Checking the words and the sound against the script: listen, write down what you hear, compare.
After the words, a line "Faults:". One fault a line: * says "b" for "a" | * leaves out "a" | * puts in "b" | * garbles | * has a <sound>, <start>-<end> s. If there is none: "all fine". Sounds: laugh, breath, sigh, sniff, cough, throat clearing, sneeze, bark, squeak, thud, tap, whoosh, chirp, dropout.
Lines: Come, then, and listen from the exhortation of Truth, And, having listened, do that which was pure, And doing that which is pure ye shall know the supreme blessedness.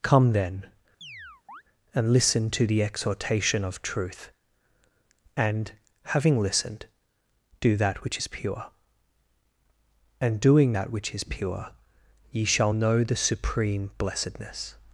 Come, then, and listen to the exhortation of Truth, And, having listened, do that which is pure, And doing that which is pure ye shall know the supreme blessedness.
Faults:
* has a chirp, 1.0-1.6 s
* says "to" for "from"
* says "is" for "was"